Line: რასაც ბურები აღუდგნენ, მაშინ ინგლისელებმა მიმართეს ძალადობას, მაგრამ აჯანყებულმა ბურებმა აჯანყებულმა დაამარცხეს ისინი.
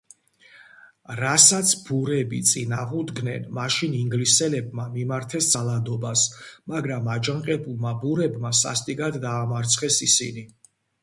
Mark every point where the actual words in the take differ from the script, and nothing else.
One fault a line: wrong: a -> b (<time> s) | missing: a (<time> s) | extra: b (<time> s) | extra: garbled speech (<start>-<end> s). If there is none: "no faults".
extra: წინ (2.5 s)
wrong: აჯანყებულმა -> სასტიკად (8.7 s)